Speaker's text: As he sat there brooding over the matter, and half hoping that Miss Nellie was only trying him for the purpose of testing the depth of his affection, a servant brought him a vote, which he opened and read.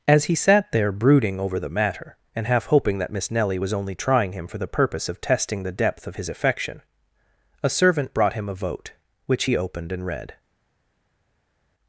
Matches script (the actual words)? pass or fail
pass